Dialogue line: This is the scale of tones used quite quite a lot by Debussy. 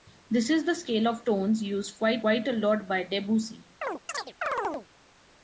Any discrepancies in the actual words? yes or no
no